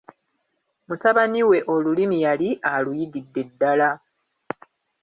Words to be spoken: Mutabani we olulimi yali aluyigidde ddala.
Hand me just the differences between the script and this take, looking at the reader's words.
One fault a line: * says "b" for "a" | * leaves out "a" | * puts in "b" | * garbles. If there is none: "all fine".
all fine